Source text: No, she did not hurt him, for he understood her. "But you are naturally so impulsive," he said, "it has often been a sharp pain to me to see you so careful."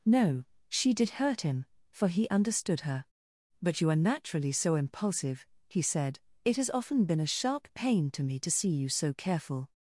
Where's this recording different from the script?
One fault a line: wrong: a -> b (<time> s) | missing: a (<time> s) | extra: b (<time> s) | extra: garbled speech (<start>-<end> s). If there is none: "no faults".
missing: not (1.1 s)